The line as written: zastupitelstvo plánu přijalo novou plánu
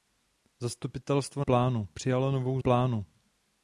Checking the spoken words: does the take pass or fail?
pass